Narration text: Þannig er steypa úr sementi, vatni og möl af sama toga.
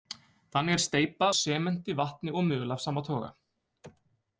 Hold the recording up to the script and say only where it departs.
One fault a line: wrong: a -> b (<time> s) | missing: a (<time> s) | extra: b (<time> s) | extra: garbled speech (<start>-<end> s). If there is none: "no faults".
missing: úr (1.3 s)